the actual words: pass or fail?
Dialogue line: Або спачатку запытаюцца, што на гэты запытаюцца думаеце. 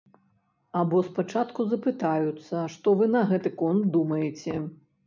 fail